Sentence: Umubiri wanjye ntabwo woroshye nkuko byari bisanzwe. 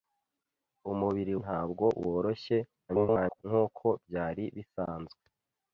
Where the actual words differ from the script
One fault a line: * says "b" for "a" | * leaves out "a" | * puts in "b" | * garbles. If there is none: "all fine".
* leaves out "wanjye"
* garbles